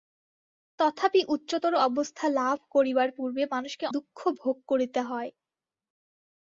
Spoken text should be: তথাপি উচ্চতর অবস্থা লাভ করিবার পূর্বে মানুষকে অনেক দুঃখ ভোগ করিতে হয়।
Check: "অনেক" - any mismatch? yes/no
yes